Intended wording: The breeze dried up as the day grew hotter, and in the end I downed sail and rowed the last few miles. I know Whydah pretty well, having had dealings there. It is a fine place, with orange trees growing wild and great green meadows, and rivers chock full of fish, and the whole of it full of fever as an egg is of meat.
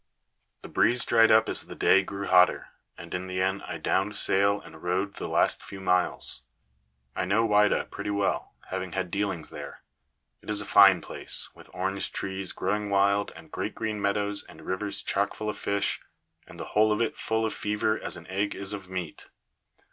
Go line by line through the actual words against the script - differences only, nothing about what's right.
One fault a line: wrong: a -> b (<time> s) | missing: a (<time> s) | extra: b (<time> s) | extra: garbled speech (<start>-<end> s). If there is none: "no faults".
no faults